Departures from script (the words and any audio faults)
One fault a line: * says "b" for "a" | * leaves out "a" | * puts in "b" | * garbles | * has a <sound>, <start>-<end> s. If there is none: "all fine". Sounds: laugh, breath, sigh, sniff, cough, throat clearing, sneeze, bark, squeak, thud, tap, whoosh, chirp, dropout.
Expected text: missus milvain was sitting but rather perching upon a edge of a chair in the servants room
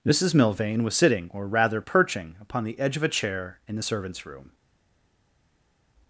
* says "or" for "but"
* says "the" for "a"